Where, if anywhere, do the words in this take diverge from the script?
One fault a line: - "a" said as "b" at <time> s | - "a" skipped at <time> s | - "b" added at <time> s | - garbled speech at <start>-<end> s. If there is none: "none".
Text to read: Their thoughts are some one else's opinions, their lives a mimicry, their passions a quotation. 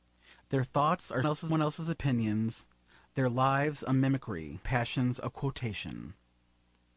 - "some" said as "else's" at 1.3 s
- "their" skipped at 4.6 s